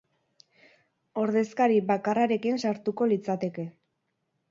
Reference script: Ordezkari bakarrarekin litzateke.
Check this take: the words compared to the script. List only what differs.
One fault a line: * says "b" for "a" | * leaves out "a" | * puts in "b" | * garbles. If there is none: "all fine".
* puts in "sartuko"